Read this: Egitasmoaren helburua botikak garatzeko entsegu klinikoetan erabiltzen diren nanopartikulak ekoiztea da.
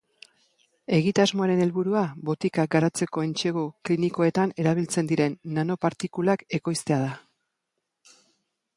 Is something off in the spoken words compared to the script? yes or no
no